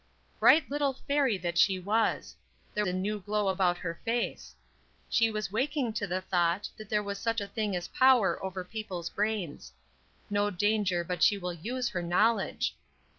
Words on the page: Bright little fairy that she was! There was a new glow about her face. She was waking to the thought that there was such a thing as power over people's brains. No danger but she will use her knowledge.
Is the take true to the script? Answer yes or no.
no